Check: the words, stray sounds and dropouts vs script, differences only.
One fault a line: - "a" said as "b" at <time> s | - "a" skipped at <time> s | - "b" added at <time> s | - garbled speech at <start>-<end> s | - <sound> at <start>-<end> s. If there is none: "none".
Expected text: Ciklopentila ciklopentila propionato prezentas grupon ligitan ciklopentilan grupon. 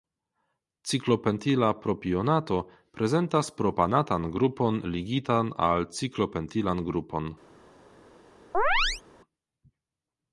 - "ciklopentila" skipped at 1.7 s
- "propanatan" added at 3.6 s
- "al" added at 5.7 s
- chirp at 8.5-9.0 s